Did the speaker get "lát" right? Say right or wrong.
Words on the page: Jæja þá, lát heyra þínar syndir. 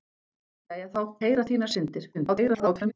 wrong